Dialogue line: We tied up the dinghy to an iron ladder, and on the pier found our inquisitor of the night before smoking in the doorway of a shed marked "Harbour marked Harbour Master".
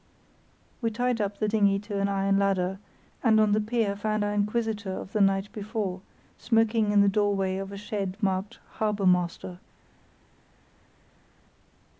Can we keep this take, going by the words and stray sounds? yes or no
no